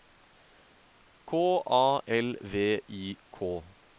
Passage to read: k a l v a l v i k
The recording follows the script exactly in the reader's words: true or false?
false